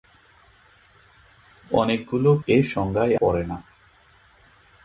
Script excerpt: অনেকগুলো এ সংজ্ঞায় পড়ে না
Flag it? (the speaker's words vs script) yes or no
no